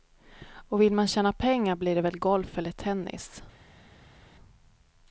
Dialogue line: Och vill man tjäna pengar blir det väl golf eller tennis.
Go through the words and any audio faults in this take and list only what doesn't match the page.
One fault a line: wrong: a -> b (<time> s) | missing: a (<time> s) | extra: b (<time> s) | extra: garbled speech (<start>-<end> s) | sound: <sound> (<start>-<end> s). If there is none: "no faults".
no faults